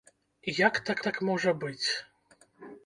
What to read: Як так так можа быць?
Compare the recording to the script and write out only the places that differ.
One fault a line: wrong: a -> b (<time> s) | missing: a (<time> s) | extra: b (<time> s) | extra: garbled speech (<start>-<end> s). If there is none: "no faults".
no faults